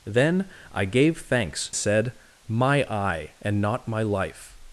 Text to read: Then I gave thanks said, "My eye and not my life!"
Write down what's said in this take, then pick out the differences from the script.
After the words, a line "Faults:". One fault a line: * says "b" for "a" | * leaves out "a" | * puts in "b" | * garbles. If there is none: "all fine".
Then I gave thanks said, "My eye and not my life!"
Faults:
all fine